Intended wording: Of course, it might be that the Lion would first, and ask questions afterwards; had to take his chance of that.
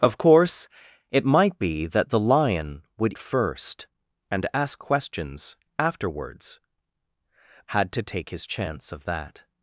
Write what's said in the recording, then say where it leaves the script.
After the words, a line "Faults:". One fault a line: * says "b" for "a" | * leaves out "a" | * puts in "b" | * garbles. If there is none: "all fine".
Of course, it might be that the Lion would first, and ask questions afterwards; had to take his chance of that.
Faults:
all fine